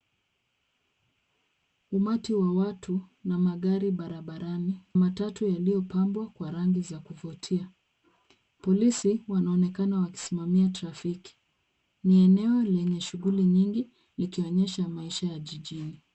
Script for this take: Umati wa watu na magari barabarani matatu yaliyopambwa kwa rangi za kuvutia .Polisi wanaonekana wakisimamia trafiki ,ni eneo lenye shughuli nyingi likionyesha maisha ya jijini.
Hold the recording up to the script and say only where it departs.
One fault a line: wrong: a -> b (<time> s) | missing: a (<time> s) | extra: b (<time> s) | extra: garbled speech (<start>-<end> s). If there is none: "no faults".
no faults